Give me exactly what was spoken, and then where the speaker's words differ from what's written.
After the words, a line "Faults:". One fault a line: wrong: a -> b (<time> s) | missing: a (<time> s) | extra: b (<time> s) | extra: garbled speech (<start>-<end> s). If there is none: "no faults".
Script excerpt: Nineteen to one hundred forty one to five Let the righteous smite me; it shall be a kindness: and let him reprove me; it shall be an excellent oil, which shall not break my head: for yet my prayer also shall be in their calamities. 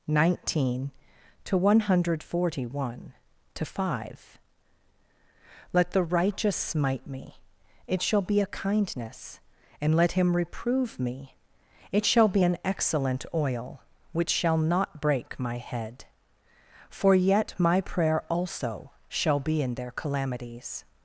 Nineteen to one hundred forty one to five Let the righteous smite me; it shall be a kindness: and let him reprove me; it shall be an excellent oil, which shall not break my head: for yet my prayer also shall be in their calamities.
Faults:
no faults